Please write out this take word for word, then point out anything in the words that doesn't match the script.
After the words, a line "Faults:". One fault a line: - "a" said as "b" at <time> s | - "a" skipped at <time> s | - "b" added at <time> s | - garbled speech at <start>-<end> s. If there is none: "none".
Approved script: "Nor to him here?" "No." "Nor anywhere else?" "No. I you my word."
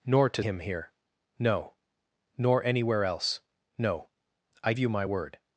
"Nor to him here?" "No." "Nor anywhere else?" "No. I you my word."
Faults:
none